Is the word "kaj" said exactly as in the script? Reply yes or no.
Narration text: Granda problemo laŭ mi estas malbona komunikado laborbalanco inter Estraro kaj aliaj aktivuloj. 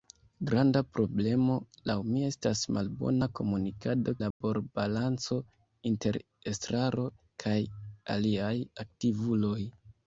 yes